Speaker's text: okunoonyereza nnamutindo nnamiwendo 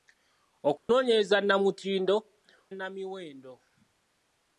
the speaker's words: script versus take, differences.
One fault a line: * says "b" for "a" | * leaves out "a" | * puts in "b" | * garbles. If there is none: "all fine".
all fine